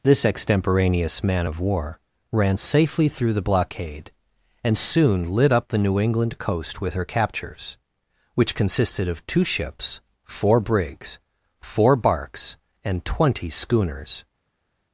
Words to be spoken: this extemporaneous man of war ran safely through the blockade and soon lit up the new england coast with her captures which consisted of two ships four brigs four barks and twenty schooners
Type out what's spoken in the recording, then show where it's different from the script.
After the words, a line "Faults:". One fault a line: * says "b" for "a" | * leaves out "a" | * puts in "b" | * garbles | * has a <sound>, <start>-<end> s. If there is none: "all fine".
this extemporaneous man of war ran safely through the blockade and soon lit up the new england coast with her captures which consisted of two ships four brigs four barks and twenty schooners
Faults:
all fine